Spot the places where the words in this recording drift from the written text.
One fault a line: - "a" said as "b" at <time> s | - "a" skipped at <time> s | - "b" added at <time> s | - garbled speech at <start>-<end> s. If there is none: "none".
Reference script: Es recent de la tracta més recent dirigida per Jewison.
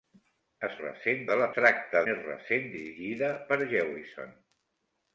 none